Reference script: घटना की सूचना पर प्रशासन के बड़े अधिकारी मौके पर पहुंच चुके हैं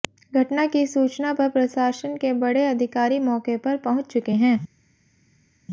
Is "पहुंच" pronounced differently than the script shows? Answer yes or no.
no